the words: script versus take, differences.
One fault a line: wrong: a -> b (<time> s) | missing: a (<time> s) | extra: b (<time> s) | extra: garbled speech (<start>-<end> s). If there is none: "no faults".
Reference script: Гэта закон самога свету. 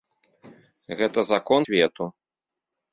missing: самога (1.6 s)